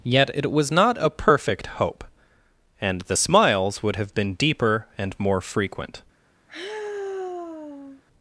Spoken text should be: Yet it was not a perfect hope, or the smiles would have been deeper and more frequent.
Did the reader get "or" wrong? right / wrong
wrong